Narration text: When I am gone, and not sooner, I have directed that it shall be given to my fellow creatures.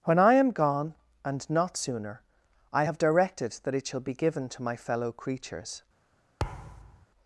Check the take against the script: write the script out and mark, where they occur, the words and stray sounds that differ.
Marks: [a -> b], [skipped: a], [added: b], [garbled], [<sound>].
When I am gone, and not sooner, I have directed that it shall be given to my fellow creatures. [thud]